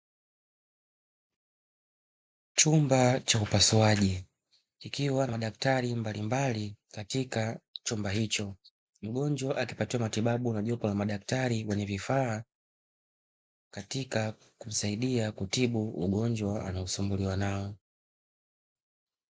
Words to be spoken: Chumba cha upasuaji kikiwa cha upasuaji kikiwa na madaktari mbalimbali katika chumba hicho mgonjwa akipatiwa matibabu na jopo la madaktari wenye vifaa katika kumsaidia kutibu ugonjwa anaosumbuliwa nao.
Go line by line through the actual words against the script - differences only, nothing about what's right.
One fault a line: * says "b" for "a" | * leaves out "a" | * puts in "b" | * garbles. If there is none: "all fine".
* leaves out "cha upasuaji kikiwa"